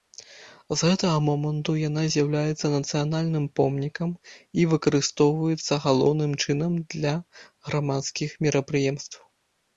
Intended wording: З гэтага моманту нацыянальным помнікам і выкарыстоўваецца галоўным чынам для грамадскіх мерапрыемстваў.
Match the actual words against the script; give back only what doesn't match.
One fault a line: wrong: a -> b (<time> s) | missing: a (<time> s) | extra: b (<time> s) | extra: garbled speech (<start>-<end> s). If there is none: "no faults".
extra: яна з'яўляецца (1.9 s)